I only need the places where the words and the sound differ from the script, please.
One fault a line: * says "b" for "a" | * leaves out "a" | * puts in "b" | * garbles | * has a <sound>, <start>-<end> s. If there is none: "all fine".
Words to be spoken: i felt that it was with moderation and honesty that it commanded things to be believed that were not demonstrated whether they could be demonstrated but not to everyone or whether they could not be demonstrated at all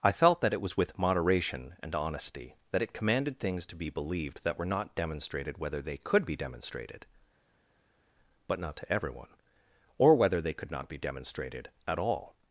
all fine